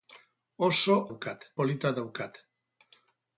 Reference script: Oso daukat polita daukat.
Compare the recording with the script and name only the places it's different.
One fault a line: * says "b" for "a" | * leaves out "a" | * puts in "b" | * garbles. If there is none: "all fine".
all fine